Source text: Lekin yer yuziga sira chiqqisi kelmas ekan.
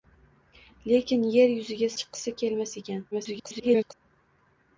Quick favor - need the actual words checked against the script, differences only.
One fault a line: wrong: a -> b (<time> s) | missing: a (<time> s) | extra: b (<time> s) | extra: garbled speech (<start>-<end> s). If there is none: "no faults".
missing: sira (1.9 s)
extra: garbled speech (3.1-3.9 s)